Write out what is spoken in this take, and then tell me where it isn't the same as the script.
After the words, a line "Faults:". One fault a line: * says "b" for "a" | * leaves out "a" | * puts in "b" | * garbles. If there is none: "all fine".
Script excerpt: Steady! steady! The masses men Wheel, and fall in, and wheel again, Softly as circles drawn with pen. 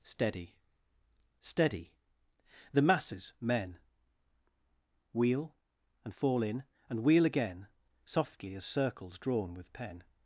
Steady! steady! The masses men Wheel, and fall in, and wheel again, Softly as circles drawn with pen.
Faults:
all fine